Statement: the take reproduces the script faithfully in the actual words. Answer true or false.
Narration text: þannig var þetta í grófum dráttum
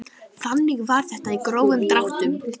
true